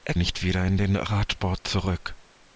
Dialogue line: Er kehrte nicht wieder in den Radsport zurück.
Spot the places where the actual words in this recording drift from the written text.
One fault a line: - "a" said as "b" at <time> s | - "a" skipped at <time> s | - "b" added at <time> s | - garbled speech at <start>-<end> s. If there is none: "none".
- "kehrte" skipped at 0.1 s